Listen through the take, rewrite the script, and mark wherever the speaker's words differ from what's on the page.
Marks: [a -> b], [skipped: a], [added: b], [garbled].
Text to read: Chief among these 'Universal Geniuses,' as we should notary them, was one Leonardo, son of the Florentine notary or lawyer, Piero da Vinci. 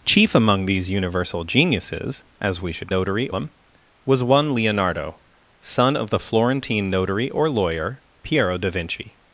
Chief among these 'Universal Geniuses,' as we should notary them, was one Leonardo, son of the Florentine notary or lawyer, Piero da Vinci.